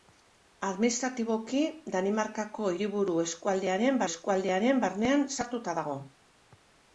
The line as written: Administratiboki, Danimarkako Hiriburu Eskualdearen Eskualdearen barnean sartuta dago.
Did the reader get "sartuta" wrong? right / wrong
right